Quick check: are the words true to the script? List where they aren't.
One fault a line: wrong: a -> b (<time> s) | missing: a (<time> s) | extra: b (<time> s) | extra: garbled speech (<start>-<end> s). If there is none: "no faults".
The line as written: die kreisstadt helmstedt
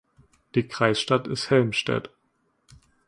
extra: ist (1.3 s)